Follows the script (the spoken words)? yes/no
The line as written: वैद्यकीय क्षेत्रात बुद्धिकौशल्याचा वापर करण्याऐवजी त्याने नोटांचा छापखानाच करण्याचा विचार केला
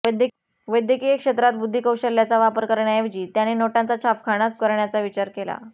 yes